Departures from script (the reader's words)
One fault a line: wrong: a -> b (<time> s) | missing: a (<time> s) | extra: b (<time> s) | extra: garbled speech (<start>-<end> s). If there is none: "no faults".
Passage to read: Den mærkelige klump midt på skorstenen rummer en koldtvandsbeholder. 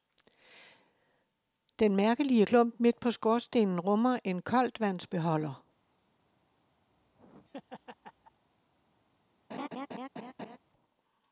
no faults